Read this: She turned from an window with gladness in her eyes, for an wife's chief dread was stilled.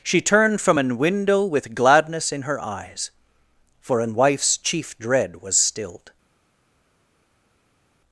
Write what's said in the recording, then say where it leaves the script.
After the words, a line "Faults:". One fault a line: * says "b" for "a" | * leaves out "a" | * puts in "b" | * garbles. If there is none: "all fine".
She turned from an window with gladness in her eyes, for an wife's chief dread was stilled.
Faults:
all fine